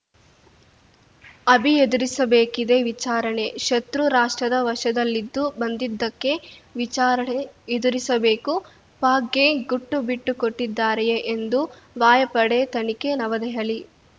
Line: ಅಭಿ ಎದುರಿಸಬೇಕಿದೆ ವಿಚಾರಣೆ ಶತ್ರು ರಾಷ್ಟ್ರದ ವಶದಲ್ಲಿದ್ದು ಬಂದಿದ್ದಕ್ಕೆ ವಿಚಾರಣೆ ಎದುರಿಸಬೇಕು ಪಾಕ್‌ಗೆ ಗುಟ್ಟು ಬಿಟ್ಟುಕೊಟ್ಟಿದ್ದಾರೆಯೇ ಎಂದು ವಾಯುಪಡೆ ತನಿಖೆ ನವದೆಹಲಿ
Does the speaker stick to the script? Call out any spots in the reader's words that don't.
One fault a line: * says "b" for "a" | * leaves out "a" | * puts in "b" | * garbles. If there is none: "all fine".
all fine